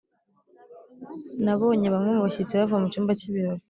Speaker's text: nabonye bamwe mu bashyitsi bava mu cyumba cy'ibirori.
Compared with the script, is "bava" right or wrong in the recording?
right